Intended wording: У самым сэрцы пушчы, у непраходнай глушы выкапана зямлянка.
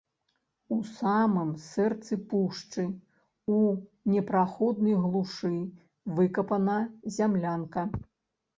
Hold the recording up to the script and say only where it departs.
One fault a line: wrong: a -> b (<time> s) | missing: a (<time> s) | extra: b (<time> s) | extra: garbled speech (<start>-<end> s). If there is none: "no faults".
no faults